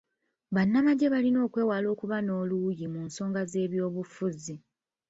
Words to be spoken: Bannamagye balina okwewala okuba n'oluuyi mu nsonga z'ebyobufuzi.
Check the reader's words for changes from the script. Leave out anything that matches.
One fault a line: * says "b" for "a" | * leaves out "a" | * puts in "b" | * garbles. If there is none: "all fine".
all fine